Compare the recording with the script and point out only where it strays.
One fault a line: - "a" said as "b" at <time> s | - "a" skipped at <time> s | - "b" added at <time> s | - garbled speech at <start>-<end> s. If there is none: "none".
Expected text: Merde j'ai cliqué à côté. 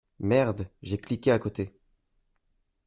none